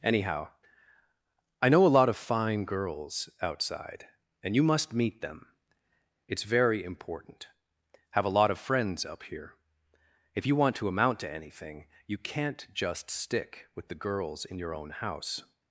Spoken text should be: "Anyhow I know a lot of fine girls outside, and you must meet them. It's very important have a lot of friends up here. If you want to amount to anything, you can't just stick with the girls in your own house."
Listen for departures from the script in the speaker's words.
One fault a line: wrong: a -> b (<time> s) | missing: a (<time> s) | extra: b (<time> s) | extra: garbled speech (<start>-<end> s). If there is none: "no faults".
no faults